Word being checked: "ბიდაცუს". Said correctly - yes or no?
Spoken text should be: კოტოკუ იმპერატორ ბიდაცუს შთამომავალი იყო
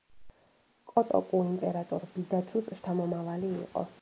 yes